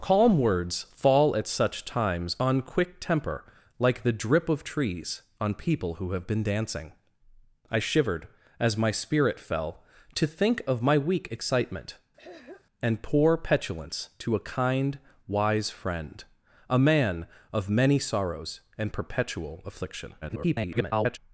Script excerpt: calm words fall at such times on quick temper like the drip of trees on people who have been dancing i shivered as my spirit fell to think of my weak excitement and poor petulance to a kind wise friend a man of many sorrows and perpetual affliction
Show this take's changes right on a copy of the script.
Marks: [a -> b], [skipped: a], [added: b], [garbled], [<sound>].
calm words fall at such times on quick temper like the drip of trees on people who have been dancing i shivered as my spirit fell to think of my weak excitement [throat clearing] and poor petulance to a kind wise friend a man of many sorrows and perpetual affliction [garbled]